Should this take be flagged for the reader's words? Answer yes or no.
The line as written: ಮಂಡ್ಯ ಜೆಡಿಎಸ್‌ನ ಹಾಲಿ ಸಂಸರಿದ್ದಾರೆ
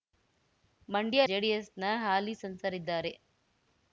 no